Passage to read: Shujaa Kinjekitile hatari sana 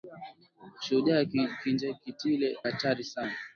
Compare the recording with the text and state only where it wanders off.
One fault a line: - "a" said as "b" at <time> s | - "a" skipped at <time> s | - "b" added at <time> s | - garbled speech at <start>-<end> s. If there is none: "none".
none